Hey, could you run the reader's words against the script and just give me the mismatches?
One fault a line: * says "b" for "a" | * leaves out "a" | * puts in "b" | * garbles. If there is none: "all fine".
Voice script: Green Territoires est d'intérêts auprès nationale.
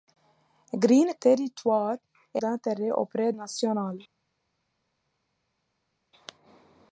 all fine